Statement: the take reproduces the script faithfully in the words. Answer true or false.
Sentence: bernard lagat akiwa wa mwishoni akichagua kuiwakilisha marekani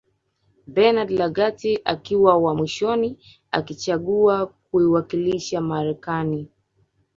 true